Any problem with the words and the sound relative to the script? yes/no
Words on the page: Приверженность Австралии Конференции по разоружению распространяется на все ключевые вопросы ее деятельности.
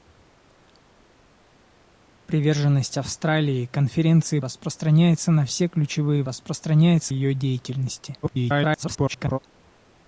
yes